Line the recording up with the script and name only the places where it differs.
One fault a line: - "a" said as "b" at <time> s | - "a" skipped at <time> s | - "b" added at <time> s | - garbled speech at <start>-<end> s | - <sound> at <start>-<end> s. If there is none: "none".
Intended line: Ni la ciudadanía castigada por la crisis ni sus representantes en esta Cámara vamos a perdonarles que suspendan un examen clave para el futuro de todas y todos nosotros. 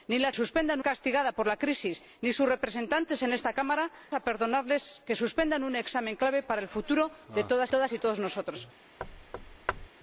- "ciudadanía" said as "suspendan" at 0.3 s
- "vamos" skipped at 3.9 s
- "todas" added at 7.7 s
- thud at 9.0-9.9 s